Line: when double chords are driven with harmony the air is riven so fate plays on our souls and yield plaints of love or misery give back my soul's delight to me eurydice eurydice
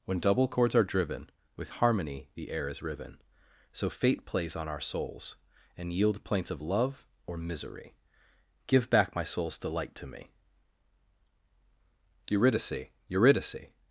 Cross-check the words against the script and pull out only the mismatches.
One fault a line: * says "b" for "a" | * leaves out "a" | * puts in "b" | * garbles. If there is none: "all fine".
all fine